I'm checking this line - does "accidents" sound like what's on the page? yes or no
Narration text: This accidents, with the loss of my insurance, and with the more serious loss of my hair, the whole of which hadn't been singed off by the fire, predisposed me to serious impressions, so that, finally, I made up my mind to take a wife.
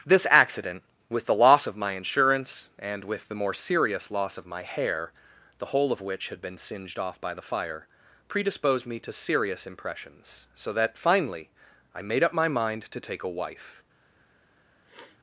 no